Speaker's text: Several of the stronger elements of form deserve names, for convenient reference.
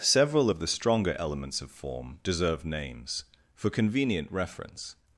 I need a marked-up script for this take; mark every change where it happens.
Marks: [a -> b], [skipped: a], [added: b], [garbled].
Several of the stronger elements of form deserve names, for convenient reference.